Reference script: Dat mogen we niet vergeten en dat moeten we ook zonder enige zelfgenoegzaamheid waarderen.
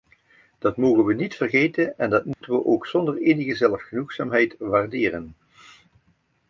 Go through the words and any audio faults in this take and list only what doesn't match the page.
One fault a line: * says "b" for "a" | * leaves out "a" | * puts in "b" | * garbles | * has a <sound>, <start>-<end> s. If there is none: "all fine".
* has a dropout, 2.3-2.4 s